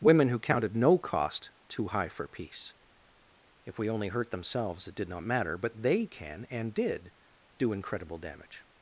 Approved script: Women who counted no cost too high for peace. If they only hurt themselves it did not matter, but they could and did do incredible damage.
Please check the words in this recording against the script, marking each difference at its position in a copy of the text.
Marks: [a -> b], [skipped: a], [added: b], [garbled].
Women who counted no cost too high for peace. If [they -> we] only hurt themselves it did not matter, but they [could -> can] and did do incredible damage.